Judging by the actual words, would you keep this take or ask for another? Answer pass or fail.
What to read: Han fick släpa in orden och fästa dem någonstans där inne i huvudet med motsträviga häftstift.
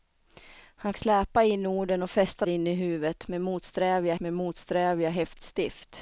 fail